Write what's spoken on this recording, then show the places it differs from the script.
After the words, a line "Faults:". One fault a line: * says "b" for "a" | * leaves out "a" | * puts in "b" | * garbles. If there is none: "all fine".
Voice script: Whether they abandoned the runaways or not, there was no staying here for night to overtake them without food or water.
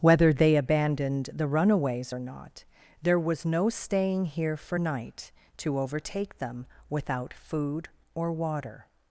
Whether they abandoned the runaways or not, there was no staying here for night to overtake them without food or water.
Faults:
all fine